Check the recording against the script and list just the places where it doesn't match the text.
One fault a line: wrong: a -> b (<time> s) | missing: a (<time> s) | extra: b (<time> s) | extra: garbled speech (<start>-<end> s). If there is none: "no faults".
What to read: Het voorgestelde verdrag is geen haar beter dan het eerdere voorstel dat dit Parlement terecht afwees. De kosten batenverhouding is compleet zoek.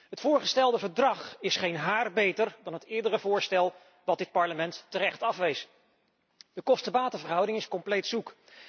no faults